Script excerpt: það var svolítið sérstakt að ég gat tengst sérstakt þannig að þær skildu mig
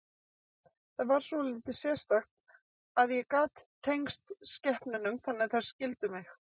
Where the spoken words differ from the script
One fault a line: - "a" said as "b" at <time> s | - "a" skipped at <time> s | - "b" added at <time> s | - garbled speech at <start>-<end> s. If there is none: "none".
- "sérstakt" said as "skepnunum" at 4.6 s